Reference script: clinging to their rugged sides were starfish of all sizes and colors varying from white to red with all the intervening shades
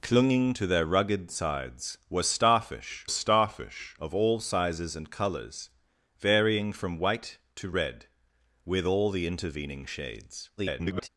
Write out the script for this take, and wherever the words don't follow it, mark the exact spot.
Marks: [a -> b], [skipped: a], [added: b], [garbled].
clinging to their rugged sides were starfish [added: starfish] of all sizes and colors varying from white to red with all the intervening shades [garbled]